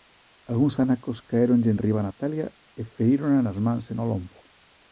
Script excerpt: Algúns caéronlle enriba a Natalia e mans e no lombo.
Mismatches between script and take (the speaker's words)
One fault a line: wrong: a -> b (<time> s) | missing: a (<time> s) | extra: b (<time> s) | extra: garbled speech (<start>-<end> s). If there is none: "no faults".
extra: anacos (0.8 s)
extra: ferírona nas (2.9 s)